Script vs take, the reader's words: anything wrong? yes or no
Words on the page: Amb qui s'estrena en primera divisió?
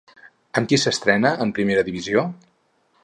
no